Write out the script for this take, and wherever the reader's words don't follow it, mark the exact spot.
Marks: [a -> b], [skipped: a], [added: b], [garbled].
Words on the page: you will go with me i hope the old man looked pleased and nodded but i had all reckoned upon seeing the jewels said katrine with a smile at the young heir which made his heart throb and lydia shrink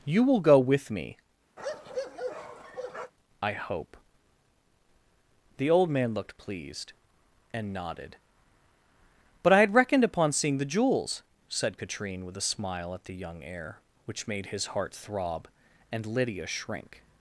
you will go with me i hope the old man looked pleased and nodded but i had [skipped: all] reckoned upon seeing the jewels said katrine with a smile at the young heir which made his heart throb and lydia shrink